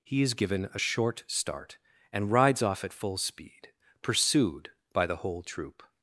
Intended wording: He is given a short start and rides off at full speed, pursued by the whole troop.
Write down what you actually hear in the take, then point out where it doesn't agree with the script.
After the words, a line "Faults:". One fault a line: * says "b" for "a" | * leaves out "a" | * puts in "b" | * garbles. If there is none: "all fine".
He is given a short start and rides off at full speed, pursued by the whole troop.
Faults:
all fine